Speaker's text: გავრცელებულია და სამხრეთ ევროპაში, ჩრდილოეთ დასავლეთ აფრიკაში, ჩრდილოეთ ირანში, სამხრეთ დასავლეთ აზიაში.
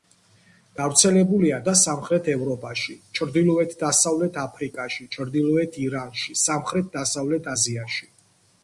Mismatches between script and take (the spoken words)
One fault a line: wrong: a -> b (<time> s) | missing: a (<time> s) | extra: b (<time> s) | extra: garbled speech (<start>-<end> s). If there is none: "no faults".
no faults